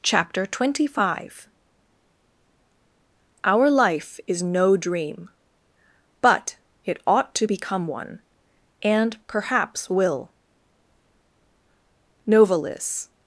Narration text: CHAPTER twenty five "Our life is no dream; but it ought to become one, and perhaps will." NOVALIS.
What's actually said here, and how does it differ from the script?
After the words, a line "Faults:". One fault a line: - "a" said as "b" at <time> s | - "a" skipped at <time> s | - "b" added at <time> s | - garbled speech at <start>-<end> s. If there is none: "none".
CHAPTER twenty five "Our life is no dream; but it ought to become one, and perhaps will." NOVALIS.
Faults:
none